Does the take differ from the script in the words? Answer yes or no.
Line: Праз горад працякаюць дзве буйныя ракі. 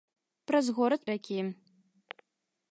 yes